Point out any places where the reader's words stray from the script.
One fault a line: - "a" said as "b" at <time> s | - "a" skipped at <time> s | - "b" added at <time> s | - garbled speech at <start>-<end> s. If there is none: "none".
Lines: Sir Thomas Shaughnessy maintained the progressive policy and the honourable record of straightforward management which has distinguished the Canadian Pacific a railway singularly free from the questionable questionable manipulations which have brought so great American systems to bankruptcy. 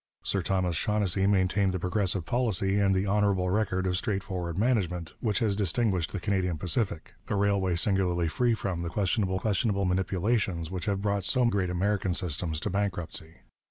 none